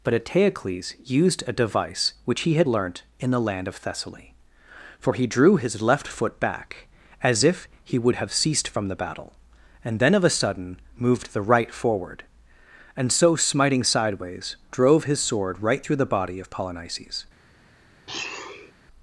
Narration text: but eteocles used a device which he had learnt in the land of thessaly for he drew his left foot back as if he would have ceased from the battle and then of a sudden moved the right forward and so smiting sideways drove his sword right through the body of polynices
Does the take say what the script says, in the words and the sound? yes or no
no